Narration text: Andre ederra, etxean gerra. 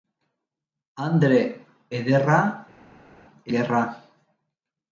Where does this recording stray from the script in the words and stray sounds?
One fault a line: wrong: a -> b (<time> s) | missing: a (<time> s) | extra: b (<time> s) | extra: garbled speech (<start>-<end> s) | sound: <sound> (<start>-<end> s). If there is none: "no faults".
missing: etxean (2.4 s)